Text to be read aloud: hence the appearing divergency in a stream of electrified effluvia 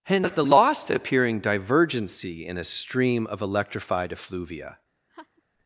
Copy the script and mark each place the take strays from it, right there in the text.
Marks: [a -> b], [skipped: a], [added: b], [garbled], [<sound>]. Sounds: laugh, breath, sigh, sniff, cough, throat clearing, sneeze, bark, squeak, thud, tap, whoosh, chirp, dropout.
hence the [added: lost] appearing divergency in a stream of electrified effluvia [laugh]